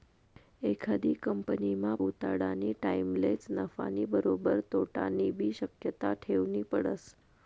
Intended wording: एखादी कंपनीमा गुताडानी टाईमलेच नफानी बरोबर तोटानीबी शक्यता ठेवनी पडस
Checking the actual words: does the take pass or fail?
pass